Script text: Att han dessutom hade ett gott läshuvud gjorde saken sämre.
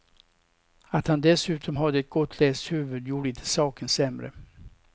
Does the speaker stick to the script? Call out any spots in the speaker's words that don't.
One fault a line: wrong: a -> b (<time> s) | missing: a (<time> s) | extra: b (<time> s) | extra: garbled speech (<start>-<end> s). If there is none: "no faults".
extra: inte (3.3 s)